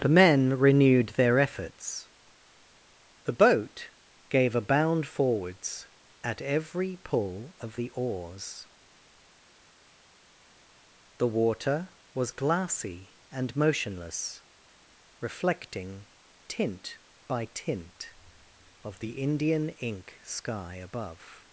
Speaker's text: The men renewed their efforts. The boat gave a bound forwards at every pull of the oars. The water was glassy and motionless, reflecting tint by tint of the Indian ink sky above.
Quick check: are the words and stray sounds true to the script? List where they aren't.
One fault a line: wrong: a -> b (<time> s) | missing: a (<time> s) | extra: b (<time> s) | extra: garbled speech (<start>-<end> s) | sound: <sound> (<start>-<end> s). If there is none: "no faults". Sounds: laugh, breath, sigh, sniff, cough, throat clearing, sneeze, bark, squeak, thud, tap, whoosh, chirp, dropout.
no faults